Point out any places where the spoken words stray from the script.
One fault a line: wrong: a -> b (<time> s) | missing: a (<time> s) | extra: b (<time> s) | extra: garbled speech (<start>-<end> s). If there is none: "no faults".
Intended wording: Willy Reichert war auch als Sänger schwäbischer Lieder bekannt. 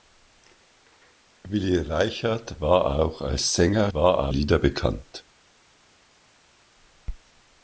wrong: schwäbischer -> war (3.9 s)